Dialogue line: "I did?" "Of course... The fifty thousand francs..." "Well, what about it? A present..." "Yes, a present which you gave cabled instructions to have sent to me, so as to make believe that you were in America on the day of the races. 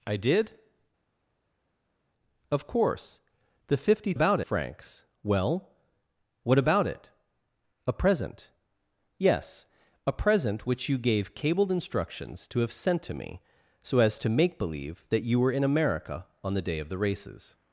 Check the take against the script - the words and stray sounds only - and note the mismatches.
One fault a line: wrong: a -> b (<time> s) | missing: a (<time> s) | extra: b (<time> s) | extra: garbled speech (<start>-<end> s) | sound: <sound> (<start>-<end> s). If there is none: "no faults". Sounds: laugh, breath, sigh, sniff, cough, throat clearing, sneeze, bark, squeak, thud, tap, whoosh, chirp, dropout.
wrong: thousand -> about (4.1 s)